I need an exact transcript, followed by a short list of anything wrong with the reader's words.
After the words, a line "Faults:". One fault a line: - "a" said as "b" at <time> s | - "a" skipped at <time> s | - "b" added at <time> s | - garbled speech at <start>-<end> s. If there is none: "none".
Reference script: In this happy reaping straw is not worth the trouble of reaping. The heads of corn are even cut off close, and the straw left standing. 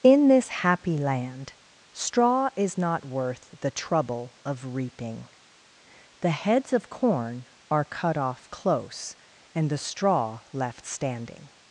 In this happy land straw is not worth the trouble of reaping. The heads of corn are cut off close, and the straw left standing.
Faults:
- "reaping" said as "land" at 1.0 s
- "even" skipped at 7.8 s